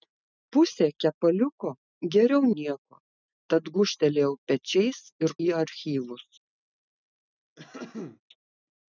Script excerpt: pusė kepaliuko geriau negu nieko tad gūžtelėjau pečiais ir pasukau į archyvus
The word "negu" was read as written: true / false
false